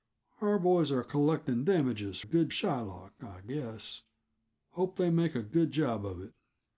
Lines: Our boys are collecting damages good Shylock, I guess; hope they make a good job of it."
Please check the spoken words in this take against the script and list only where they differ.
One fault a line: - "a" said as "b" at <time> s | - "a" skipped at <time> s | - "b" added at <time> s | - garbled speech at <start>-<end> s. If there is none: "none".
none